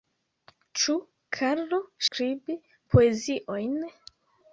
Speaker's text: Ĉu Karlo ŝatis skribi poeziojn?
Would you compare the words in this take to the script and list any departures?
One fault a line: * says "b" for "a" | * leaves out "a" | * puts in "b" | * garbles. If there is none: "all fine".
* leaves out "ŝatis"